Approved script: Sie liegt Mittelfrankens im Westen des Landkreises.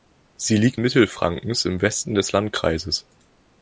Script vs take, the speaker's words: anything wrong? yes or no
no